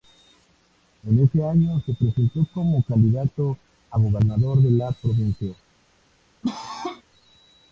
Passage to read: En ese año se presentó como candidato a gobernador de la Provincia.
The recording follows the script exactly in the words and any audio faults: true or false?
false